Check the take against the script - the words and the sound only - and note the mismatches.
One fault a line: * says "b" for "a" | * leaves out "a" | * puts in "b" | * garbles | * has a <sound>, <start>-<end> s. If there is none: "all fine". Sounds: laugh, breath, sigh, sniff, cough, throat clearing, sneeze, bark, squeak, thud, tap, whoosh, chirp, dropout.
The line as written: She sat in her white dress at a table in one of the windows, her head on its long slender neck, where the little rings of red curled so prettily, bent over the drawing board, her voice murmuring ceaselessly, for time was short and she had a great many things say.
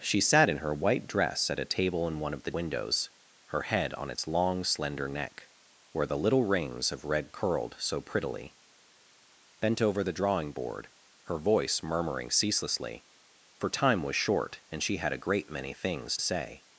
all fine